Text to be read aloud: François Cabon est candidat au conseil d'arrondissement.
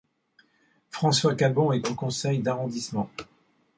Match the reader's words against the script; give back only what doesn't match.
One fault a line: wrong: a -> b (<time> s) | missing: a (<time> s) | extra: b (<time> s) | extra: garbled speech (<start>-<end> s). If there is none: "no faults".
missing: candidat (1.8 s)